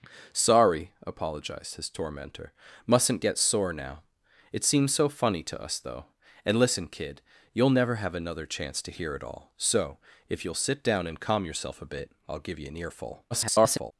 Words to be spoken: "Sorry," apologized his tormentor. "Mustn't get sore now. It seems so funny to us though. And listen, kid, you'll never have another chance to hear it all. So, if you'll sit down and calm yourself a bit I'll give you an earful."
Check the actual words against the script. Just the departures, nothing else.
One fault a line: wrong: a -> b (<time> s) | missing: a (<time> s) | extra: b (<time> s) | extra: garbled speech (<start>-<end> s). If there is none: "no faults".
extra: garbled speech (13.3-13.9 s)